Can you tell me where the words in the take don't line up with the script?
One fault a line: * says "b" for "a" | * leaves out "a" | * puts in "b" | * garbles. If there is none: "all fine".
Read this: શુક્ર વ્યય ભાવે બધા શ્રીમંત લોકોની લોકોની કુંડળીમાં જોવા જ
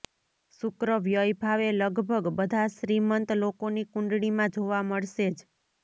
* puts in "લગભગ"
* leaves out "લોકોની"
* puts in "મળશે"